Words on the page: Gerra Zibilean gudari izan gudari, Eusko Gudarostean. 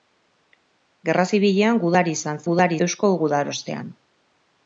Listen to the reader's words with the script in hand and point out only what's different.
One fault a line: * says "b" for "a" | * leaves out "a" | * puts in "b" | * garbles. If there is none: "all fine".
all fine